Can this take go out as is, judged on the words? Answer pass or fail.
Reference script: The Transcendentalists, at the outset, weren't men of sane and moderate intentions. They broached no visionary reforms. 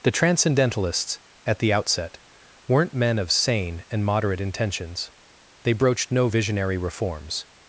pass